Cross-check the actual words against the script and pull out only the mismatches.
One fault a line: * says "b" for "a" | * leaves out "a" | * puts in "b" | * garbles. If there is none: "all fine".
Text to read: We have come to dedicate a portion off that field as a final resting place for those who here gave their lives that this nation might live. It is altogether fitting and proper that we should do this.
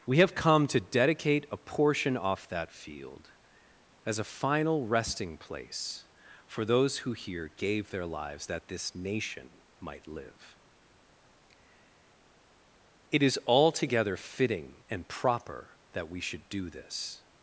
all fine